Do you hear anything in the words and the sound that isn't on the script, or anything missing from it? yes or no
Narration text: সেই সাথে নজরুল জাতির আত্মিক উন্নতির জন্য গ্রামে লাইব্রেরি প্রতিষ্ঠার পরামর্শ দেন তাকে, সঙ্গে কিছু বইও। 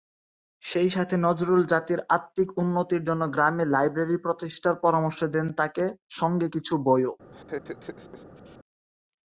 yes